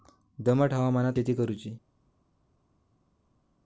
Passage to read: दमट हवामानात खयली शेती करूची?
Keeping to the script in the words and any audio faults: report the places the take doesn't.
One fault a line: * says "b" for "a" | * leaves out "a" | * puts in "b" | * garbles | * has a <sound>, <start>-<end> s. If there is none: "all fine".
* leaves out "खयली"